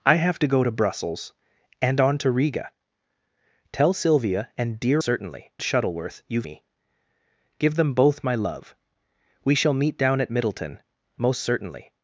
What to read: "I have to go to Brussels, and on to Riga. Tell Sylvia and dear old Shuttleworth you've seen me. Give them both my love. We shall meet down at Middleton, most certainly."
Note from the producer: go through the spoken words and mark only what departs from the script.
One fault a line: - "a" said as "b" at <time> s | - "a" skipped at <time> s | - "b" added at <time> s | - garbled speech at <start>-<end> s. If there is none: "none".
- "old" said as "certainly" at 5.0 s
- "seen" skipped at 6.5 s